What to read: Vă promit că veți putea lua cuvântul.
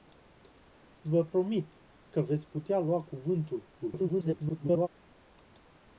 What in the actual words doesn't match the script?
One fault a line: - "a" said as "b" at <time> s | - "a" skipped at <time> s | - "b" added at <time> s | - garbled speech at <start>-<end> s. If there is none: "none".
- garbled speech at 3.8-4.9 s